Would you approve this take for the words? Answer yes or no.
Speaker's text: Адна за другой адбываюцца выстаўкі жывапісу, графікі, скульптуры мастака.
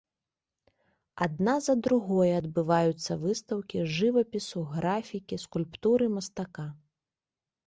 yes